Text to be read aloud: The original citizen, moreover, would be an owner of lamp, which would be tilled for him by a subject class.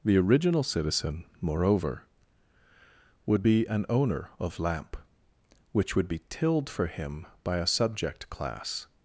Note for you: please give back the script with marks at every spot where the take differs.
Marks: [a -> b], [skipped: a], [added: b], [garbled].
The original citizen, moreover, would be an owner of lamp, which would be tilled for him by a subject class.